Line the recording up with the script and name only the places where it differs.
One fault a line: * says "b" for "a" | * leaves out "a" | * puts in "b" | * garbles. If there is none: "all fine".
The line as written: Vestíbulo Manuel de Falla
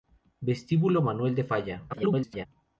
* garbles